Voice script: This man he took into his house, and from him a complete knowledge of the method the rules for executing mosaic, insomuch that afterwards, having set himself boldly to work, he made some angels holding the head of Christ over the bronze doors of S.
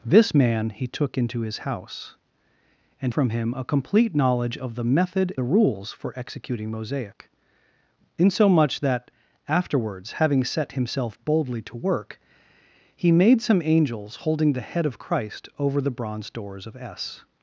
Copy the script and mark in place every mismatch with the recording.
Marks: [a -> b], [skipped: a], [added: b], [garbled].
This man he took into his house, and from him a complete knowledge of the method the rules for executing mosaic, insomuch that afterwards, having set himself boldly to work, he made some angels holding the head of Christ over the bronze doors of S.